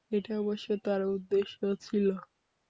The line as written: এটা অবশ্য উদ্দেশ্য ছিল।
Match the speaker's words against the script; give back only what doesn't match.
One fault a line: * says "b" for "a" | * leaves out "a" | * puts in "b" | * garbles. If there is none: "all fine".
* puts in "তার"